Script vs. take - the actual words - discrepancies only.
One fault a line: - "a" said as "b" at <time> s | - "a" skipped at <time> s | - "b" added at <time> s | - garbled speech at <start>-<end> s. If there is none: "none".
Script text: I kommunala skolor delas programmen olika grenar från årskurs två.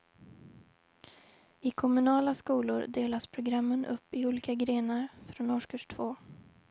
- "upp i" added at 3.9 s